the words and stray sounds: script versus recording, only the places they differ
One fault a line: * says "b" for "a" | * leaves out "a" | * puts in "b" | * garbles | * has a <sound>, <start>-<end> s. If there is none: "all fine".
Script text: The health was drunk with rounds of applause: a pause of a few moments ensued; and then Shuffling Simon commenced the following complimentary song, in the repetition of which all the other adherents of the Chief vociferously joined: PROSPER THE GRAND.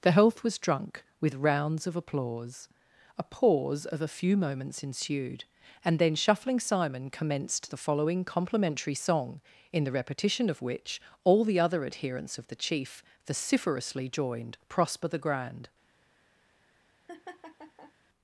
* has a laugh, 17.1-17.9 s